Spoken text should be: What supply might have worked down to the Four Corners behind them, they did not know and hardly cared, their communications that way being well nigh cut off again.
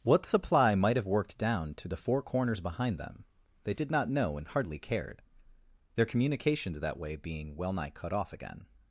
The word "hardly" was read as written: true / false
true